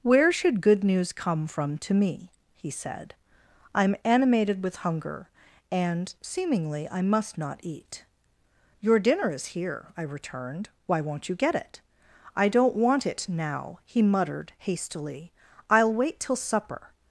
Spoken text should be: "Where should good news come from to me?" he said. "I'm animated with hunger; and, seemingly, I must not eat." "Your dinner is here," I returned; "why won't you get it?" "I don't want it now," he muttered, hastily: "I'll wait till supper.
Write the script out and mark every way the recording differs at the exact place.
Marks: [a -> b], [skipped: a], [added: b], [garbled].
"Where should good news come from to me?" he said. "I'm animated with hunger; and, seemingly, I must not eat." "Your dinner is here," I returned; "why won't you get it?" "I don't want it now," he muttered, hastily: "I'll wait till supper.